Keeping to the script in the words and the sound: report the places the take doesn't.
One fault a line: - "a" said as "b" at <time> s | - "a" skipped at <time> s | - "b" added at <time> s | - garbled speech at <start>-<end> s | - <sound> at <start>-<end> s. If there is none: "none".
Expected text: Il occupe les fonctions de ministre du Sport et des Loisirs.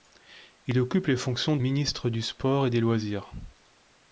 - "de" skipped at 1.6 s